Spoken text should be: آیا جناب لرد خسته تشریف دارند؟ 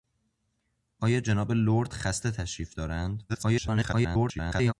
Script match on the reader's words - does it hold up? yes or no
no